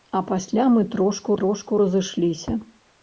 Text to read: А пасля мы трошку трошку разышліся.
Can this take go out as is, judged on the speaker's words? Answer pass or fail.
pass